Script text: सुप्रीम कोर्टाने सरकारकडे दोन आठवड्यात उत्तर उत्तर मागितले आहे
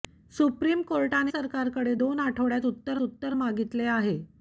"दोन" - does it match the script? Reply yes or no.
yes